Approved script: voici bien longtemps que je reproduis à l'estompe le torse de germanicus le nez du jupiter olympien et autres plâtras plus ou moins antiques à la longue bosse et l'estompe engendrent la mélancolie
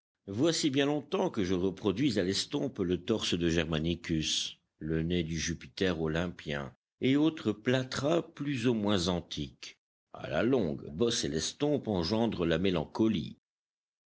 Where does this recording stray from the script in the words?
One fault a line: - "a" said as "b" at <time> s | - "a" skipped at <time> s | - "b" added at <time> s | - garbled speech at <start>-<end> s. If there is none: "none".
none